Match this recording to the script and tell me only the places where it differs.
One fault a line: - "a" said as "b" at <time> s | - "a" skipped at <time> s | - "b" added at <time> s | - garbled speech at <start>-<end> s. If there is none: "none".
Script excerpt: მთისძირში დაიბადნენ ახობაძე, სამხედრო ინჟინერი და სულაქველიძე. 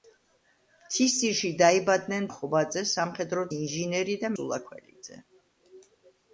none